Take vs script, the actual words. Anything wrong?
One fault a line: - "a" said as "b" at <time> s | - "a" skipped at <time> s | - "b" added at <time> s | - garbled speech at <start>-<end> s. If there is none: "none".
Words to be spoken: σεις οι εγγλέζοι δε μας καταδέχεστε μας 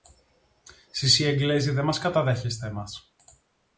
none